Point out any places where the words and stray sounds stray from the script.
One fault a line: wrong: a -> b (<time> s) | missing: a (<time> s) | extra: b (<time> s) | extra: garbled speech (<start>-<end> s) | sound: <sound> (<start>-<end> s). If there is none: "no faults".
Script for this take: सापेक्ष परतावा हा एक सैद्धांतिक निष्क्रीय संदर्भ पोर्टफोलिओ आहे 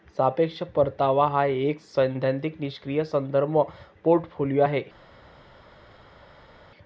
no faults